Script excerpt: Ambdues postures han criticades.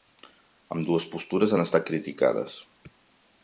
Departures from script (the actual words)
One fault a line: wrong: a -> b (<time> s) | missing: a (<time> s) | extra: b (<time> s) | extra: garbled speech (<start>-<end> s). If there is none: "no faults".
extra: estat (1.7 s)